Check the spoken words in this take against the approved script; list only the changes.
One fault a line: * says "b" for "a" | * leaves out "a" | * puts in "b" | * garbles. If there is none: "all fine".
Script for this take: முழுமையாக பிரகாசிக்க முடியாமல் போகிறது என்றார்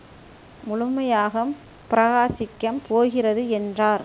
* leaves out "முடியாமல்"